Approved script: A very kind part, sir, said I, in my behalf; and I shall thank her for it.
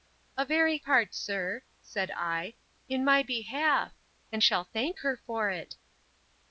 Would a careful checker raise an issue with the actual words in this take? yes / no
yes